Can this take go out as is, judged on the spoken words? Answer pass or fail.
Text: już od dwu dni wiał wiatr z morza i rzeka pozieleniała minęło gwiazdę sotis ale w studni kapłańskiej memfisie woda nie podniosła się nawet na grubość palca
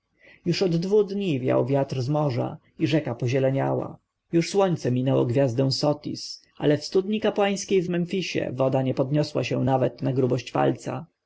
fail